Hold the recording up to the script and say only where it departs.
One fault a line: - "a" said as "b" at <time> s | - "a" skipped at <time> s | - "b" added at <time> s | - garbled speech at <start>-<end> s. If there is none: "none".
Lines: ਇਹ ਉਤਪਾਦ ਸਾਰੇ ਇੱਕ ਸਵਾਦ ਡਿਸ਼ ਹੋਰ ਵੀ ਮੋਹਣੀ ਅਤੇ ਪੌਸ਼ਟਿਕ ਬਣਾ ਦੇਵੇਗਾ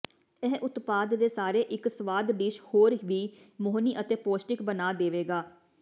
- "ਦੇ" added at 1.1 s